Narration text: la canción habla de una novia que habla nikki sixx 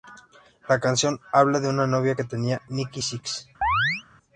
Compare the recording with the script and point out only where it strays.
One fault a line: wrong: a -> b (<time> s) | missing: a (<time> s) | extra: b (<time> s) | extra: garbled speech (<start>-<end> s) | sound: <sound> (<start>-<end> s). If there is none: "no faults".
wrong: habla -> tenía (2.2 s)
sound: chirp (3.6-4.0 s)